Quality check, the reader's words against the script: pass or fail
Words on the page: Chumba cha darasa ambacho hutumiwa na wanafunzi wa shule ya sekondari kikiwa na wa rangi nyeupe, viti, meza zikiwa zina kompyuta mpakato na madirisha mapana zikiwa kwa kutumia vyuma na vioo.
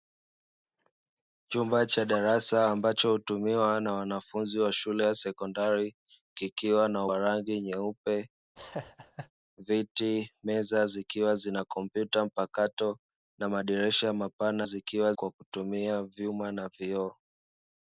pass